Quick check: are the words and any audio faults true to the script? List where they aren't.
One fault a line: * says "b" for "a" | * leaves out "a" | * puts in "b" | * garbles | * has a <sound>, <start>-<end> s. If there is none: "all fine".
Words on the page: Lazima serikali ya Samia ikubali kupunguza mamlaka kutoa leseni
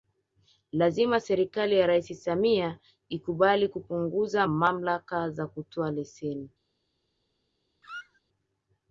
* puts in "Rais"
* puts in "za"
* has a squeak, 7.8-8.2 s